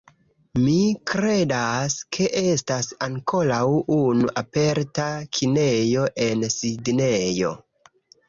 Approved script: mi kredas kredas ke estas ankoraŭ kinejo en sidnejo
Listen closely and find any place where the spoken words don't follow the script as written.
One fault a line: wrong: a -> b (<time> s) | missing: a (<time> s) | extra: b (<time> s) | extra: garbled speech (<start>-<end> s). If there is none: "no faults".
missing: kredas (2.0 s)
extra: unu aperta (4.0 s)